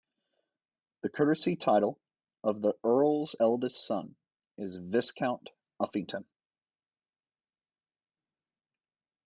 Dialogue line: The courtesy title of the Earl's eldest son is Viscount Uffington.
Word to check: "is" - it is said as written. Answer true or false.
true